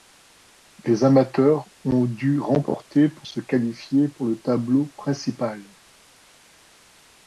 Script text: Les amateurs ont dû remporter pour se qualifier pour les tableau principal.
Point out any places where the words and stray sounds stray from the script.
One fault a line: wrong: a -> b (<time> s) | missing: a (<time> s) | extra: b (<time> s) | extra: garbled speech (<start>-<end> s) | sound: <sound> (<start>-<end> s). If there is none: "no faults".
wrong: les -> le (4.3 s)